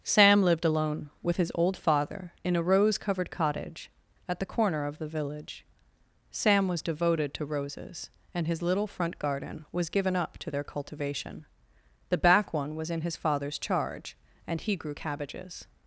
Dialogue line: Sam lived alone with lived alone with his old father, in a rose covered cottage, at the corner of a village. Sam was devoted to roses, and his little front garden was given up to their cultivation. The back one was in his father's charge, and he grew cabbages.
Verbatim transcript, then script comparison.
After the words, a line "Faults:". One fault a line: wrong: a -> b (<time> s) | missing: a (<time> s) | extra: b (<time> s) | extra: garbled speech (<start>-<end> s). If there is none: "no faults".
Sam lived alone with his old father, in a rose covered cottage, at the corner of the village. Sam was devoted to roses, and his little front garden was given up to their cultivation. The back one was in his father's charge, and he grew cabbages.
Faults:
missing: lived alone with (1.4 s)
wrong: a -> the (5.0 s)